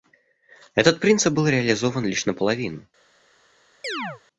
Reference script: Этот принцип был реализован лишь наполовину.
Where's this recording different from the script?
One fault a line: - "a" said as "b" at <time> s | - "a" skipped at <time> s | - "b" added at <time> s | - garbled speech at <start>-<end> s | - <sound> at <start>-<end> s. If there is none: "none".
- chirp at 3.8-4.2 s